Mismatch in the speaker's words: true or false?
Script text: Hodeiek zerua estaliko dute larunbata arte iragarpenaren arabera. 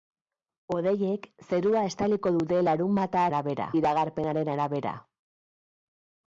true